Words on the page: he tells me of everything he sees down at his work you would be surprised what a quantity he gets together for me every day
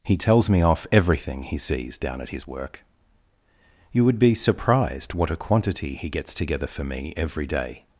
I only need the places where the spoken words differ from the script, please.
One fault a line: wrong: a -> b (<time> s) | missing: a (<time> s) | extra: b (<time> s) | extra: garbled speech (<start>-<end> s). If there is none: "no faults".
wrong: of -> off (0.6 s)